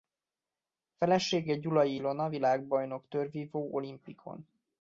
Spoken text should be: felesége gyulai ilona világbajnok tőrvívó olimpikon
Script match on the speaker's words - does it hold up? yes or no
yes